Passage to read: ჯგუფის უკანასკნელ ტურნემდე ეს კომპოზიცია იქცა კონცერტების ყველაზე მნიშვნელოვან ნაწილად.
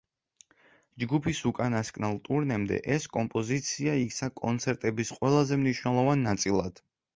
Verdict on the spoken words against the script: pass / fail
pass